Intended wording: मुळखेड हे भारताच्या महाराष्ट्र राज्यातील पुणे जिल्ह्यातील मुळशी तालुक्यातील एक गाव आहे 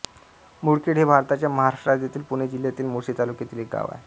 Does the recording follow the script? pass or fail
pass